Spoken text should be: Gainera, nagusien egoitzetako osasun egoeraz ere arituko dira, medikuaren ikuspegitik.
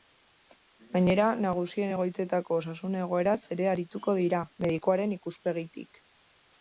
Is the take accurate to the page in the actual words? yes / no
yes